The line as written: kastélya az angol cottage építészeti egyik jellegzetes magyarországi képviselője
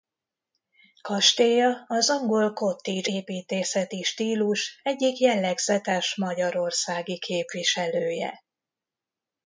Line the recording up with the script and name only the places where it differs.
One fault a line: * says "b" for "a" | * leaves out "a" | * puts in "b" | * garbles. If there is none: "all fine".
* puts in "stílus"